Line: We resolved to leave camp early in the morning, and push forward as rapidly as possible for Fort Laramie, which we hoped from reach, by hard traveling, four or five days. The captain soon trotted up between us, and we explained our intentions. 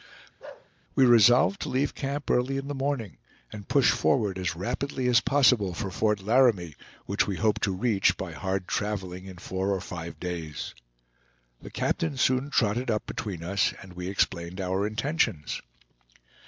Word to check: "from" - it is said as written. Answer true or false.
false